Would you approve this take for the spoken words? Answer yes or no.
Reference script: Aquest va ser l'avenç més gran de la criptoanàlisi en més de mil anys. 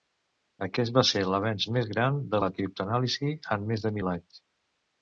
yes